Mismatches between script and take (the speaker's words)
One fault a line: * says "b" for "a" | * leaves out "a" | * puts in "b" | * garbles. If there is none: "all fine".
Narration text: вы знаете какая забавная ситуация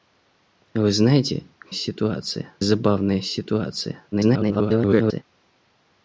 * says "ситуация" for "какая"
* garbles